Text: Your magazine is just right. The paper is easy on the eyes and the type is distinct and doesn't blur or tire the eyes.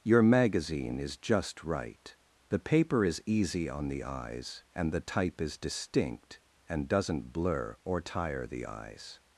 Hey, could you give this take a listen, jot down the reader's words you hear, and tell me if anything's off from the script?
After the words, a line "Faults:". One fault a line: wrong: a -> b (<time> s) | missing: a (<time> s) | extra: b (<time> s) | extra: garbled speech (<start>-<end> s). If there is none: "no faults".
Your magazine is just right. The paper is easy on the eyes and the type is distinct and doesn't blur or tire the eyes.
Faults:
no faults